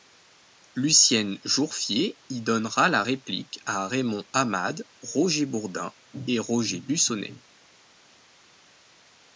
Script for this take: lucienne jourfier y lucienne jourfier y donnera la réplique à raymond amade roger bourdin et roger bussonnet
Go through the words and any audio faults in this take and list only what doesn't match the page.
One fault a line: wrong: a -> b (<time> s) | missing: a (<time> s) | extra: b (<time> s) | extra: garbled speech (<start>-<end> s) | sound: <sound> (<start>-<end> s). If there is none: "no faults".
missing: lucienne jourfier y (2.4 s)